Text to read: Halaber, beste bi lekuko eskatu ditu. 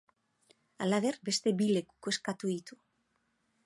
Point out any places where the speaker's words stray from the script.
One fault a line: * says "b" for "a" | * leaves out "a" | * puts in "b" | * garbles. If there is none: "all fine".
all fine